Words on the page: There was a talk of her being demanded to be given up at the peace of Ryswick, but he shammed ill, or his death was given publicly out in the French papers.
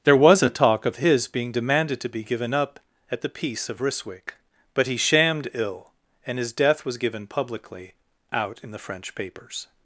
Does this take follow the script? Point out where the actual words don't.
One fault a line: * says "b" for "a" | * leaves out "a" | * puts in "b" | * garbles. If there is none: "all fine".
* says "his" for "her"
* says "and" for "or"